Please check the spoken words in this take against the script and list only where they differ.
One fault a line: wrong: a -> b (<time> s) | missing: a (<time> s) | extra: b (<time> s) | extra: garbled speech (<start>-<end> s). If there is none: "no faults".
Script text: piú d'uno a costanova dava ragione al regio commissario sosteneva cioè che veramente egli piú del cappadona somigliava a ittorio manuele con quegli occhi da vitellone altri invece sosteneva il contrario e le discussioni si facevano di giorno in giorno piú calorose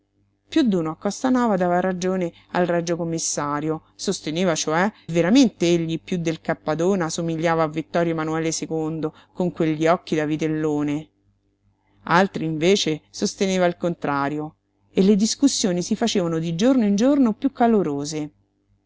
missing: che (4.9 s)